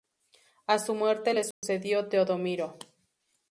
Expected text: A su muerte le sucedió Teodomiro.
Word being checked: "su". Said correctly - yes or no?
yes